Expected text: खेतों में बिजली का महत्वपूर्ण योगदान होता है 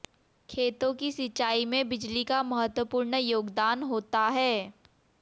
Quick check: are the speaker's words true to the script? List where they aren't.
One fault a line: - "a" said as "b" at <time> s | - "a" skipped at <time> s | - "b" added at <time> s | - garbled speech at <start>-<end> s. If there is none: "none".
- "की सिंचाई" added at 0.9 s